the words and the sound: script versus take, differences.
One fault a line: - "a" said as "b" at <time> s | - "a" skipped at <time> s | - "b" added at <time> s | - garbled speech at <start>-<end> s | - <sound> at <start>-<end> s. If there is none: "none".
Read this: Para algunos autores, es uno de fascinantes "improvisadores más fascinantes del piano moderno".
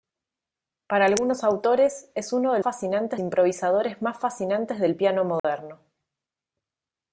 - dropout at 5.4-5.4 s